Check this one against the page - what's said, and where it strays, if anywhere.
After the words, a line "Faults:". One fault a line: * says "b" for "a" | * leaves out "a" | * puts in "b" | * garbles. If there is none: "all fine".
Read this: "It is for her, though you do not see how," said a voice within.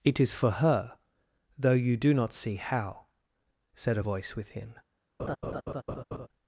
"It is for her, though you do not see how," said a voice within.
Faults:
all fine